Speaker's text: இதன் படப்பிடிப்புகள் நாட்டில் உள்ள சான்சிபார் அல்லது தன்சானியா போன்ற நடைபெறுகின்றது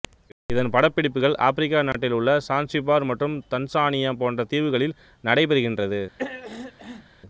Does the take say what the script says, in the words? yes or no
no